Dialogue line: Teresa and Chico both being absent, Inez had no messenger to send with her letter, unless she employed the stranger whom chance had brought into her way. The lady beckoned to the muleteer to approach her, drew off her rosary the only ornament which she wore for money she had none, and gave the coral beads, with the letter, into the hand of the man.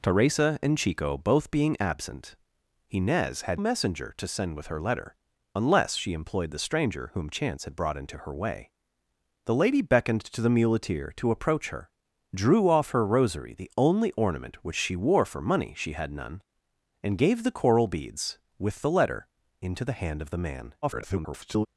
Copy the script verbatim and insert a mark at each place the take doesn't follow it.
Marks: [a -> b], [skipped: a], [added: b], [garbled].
Teresa and Chico both being absent, Inez had [skipped: no] messenger to send with her letter, unless she employed the stranger whom chance had brought into her way. The lady beckoned to the muleteer to approach her, drew off her rosary the only ornament which she wore for money she had none, and gave the coral beads, with the letter, into the hand of the man. [garbled]